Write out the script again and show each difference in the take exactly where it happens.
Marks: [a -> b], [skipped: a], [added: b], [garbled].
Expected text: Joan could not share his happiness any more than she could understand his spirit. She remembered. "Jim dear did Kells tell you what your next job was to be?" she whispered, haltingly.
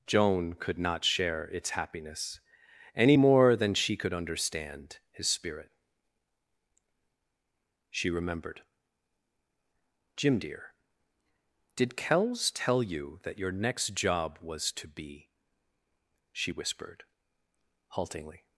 Joan could not share [his -> its] happiness any more than she could understand his spirit. She remembered. "Jim dear did Kells tell you [what -> that] your next job was to be?" she whispered, haltingly.